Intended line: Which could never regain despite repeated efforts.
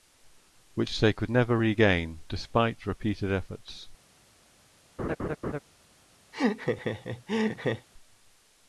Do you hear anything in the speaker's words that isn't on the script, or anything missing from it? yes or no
yes